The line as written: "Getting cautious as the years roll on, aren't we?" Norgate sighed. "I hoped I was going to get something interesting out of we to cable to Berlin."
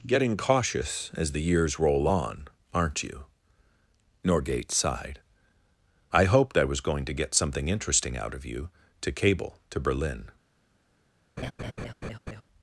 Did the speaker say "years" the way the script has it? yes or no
yes